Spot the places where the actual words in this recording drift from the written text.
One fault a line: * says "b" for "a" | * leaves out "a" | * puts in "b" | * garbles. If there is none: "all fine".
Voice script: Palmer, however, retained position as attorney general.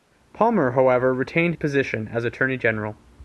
all fine